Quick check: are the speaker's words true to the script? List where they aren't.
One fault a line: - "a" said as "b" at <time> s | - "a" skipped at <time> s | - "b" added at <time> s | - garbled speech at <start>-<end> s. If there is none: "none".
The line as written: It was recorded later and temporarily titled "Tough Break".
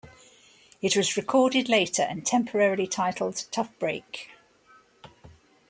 none